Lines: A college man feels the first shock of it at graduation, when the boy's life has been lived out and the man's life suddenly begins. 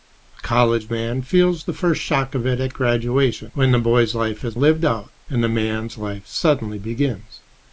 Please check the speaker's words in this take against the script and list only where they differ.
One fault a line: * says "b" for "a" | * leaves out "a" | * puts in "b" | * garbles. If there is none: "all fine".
* leaves out "been"